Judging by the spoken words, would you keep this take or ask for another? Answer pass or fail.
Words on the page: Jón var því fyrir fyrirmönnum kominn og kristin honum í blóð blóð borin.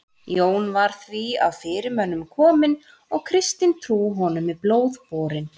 fail